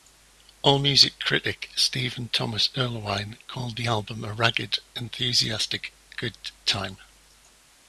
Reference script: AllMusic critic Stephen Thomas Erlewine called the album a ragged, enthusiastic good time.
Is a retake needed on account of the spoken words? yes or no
no